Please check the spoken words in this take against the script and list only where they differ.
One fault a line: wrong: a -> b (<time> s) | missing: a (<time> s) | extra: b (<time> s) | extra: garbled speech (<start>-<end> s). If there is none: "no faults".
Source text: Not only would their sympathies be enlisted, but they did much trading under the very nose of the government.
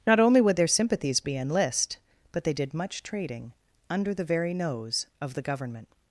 wrong: enlisted -> enlist (1.4 s)